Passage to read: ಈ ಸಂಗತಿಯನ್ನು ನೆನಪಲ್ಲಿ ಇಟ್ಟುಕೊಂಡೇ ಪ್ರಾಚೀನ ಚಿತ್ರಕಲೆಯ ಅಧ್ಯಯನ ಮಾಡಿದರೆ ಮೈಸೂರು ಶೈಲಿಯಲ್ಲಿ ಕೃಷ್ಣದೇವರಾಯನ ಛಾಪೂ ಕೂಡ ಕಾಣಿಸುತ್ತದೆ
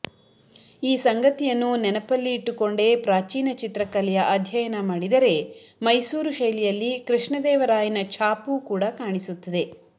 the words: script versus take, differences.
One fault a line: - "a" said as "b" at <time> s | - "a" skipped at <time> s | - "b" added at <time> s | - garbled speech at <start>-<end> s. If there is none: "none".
none